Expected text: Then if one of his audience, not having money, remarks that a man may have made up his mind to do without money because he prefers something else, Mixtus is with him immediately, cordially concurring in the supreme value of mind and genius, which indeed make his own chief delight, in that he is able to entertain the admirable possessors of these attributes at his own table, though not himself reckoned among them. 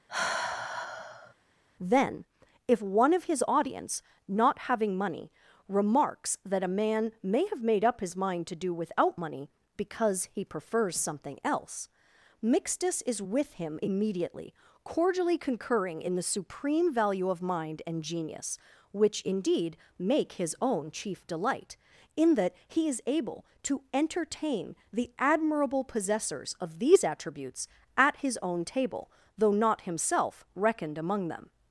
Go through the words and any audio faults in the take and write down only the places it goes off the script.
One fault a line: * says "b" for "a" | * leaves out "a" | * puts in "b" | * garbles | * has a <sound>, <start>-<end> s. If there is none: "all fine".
* has a sigh, 0.1-1.3 s